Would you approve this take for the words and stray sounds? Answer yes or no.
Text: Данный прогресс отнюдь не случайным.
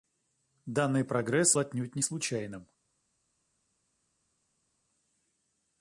yes